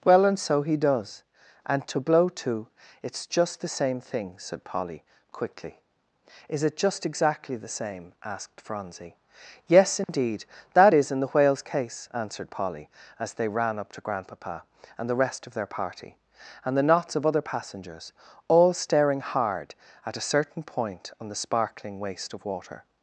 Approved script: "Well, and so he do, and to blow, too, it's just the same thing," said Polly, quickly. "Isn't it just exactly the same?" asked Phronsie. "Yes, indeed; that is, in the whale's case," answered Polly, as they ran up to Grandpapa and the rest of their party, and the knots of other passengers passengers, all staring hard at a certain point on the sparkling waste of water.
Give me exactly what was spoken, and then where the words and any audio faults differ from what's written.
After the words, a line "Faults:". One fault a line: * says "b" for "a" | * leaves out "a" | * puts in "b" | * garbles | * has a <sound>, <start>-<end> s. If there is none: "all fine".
"Well, and so he does, and to blow, too, it's just the same thing," said Polly, quickly. "Is it just exactly the same?" asked Phronsie. "Yes, indeed; that is, in the whale's case," answered Polly, as they ran up to Grandpapa and the rest of their party, and the knots of other passengers, all staring hard at a certain point on the sparkling waste of water.
Faults:
* says "does" for "do"
* says "Is" for "Isn't"
* has a dropout, 10.0-10.1 s
* leaves out "passengers"